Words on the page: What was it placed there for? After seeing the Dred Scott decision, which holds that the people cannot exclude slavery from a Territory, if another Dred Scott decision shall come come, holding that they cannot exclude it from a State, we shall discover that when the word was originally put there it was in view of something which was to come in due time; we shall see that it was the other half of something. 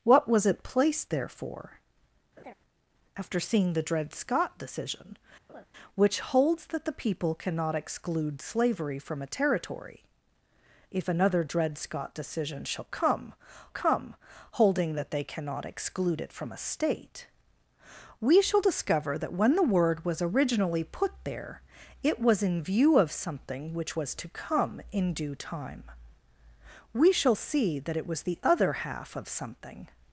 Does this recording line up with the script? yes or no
yes